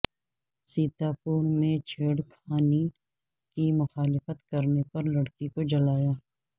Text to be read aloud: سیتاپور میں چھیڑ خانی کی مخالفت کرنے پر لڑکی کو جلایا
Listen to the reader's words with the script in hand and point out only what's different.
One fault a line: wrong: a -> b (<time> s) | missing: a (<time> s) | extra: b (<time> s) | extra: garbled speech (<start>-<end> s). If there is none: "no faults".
no faults